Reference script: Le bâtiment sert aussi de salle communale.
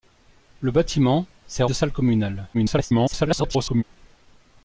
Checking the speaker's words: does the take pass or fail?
fail